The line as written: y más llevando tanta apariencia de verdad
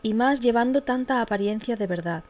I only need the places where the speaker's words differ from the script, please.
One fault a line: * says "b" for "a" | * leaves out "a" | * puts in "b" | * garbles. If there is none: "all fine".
all fine